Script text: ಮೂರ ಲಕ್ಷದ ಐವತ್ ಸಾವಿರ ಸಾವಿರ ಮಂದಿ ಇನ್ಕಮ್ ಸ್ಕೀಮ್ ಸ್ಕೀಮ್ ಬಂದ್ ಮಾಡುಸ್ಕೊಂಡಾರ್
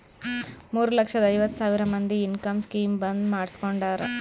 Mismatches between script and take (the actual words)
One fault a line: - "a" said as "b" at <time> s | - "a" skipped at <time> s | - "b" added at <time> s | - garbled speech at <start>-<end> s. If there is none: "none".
- "ಸಾವಿರ" skipped at 1.8 s
- "ಸ್ಕೀಮ್" skipped at 2.9 s